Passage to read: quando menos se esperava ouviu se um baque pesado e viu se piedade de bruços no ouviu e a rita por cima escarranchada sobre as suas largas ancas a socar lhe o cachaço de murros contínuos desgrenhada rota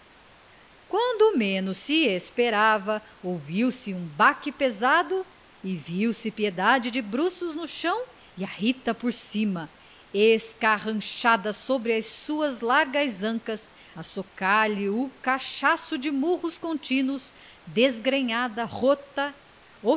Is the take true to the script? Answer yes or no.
no